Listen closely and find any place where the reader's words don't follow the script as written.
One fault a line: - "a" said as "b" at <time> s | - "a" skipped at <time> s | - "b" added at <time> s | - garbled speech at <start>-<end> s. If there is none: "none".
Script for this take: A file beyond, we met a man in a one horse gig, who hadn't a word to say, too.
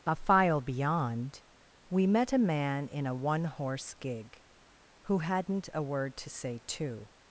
none